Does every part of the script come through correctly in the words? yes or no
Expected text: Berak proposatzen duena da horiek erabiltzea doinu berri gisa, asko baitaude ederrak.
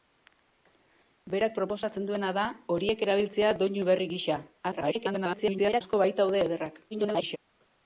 no